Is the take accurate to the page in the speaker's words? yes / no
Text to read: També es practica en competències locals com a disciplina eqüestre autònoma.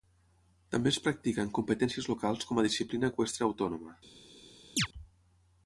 yes